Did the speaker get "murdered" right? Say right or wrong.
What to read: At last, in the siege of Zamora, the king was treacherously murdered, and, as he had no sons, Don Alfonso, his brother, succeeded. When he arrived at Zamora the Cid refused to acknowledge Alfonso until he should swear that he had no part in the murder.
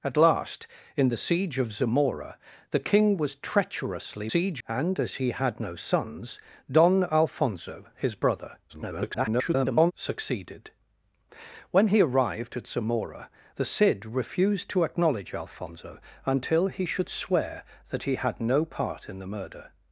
wrong